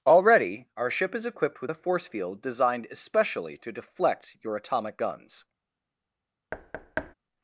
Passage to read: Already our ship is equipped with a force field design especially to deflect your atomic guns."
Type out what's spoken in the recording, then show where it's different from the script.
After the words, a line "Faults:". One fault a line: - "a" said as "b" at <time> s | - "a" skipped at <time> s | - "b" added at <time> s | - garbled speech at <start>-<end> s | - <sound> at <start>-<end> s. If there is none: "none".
Already our ship is equipped with a force field designed especially to deflect your atomic guns."
Faults:
- "design" said as "designed" at 2.4 s
- thud at 6.5-7.1 s